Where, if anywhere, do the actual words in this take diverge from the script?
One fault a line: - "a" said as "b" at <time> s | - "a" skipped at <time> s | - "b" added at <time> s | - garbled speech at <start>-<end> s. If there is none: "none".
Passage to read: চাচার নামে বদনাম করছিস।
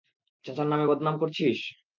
none